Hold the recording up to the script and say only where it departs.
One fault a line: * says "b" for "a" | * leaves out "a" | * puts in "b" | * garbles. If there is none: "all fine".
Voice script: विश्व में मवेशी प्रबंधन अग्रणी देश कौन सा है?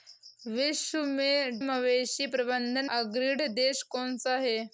all fine